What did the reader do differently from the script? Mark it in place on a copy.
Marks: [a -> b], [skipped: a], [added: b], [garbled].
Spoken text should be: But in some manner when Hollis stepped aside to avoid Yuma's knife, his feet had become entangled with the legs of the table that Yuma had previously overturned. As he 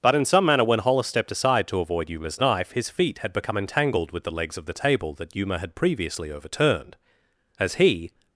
But in some manner when Hollis stepped aside to avoid Yuma's knife, his feet had become entangled with the legs of the table that Yuma had previously overturned. As he